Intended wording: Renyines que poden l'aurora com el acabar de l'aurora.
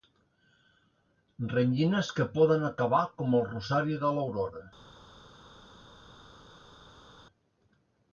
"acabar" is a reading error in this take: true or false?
true